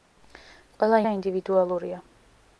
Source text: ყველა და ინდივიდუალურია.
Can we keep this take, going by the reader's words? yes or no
yes